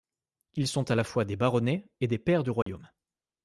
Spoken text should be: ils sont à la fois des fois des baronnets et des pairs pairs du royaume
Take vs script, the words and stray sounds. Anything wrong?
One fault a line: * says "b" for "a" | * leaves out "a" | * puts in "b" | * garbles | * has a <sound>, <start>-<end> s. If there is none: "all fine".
* leaves out "fois des"
* leaves out "pairs"
* has a dropout, 2.6-2.7 s